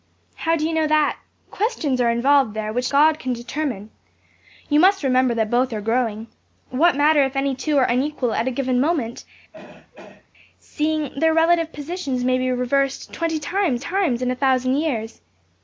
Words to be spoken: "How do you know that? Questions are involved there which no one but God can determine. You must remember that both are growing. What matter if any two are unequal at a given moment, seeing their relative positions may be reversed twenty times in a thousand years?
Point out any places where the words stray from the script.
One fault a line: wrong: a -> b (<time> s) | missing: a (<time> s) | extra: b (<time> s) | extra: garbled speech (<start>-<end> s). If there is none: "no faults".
missing: no one but (2.9 s)
extra: times (13.8 s)